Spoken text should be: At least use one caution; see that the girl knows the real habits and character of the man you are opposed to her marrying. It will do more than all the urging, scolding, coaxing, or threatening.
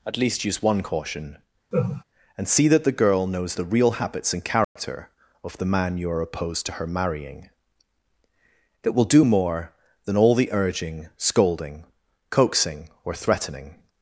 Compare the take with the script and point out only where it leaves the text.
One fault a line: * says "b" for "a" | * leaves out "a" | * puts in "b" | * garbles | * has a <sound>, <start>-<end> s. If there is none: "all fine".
* has a laugh, 1.7-2.0 s
* puts in "and"
* has a dropout, 4.6-4.8 s